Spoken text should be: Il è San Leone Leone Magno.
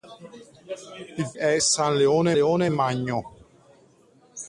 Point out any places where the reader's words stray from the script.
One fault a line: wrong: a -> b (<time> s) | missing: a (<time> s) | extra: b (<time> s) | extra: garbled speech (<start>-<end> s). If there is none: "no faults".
no faults